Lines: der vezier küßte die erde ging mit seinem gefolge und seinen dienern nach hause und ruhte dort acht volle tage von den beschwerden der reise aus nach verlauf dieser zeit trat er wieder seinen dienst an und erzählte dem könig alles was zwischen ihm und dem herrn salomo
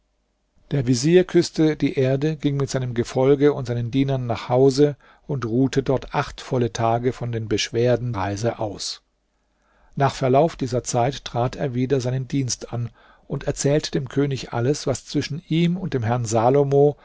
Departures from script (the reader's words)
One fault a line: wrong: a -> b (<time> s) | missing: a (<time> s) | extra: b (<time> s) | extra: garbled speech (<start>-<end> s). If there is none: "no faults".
missing: der (8.1 s)